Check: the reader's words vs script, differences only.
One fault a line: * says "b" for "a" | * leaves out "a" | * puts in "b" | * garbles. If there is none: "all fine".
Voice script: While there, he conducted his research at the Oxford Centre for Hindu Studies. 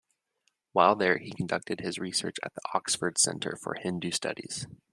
all fine